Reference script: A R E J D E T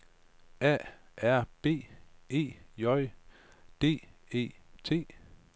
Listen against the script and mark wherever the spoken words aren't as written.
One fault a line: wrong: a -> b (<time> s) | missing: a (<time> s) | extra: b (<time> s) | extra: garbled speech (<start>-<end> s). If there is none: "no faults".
extra: B (1.6 s)